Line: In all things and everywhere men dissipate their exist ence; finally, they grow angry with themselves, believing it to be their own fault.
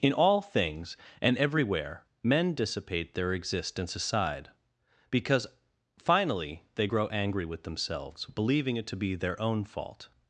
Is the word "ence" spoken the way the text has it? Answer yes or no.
no